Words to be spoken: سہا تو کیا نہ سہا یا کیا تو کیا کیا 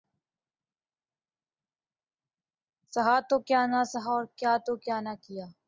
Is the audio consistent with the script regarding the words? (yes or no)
no